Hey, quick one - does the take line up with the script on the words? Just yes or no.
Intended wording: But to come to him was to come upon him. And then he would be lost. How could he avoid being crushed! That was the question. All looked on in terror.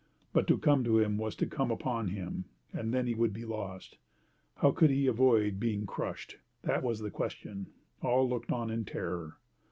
yes